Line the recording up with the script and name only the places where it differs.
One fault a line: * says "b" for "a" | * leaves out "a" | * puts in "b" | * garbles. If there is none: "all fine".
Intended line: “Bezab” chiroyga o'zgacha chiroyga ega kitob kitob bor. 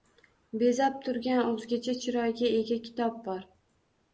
* says "turgan" for "chiroyga"
* leaves out "kitob"